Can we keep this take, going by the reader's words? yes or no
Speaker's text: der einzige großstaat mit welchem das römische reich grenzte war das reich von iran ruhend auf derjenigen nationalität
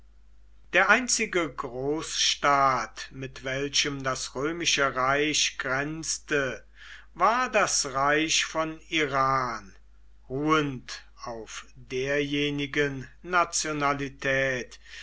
yes